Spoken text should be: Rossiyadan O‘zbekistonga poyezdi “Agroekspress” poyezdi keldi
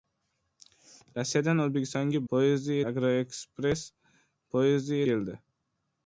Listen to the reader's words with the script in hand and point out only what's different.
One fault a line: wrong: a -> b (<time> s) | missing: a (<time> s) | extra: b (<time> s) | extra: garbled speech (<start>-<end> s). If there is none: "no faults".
no faults